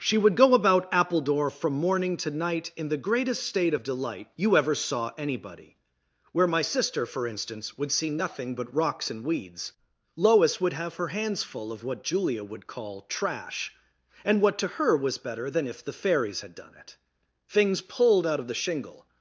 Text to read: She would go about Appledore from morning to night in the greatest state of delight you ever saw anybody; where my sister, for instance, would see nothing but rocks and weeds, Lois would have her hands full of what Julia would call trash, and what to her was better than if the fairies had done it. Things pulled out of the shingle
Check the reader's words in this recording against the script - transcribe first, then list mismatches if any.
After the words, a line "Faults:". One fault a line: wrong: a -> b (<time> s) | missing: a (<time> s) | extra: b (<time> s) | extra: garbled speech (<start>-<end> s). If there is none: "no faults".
She would go about Appledore from morning to night in the greatest state of delight you ever saw anybody; where my sister, for instance, would see nothing but rocks and weeds, Lois would have her hands full of what Julia would call trash, and what to her was better than if the fairies had done it. Things pulled out of the shingle
Faults:
no faults